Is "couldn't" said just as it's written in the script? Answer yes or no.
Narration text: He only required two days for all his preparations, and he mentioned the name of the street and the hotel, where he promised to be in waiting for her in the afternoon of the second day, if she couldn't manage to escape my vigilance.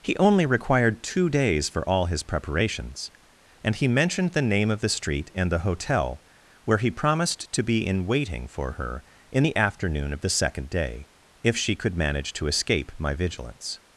no